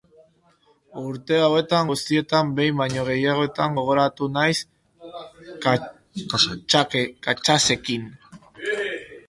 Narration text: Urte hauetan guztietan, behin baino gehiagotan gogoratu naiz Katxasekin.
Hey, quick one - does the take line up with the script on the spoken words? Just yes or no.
yes